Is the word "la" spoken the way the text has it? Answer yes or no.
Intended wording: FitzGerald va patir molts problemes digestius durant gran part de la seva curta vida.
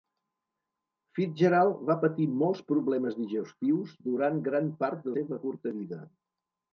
no